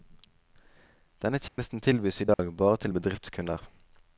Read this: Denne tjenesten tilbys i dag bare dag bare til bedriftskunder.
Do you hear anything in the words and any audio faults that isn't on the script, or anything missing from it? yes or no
yes